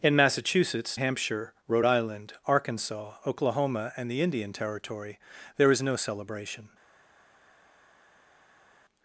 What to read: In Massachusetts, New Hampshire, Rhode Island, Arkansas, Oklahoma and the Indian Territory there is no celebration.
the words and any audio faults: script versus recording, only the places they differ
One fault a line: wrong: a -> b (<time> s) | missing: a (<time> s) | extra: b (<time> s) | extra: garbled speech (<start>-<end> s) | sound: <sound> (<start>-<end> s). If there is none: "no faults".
missing: New (1.0 s)